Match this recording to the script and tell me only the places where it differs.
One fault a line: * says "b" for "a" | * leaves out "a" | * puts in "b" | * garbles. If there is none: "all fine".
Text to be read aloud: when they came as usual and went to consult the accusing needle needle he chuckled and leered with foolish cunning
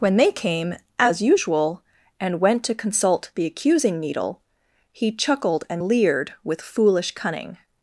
* leaves out "needle"